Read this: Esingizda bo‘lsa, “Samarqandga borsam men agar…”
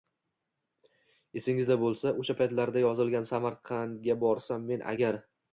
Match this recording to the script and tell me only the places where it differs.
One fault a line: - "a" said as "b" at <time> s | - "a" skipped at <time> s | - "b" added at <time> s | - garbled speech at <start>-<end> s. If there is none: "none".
- "o‘sha paytlarda yozilgan" added at 2.2 s